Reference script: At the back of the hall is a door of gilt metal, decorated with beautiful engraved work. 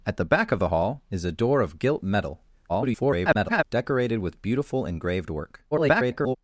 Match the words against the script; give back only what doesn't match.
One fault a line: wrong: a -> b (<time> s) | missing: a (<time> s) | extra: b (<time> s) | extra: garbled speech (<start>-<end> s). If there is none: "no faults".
extra: garbled speech (2.7-3.6 s)
extra: garbled speech (5.7-6.4 s)